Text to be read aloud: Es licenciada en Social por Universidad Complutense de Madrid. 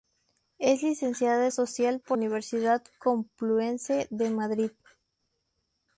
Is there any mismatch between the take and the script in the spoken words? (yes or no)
no